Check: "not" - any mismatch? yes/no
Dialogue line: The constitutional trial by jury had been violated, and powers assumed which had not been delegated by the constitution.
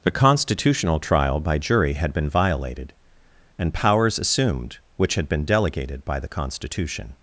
yes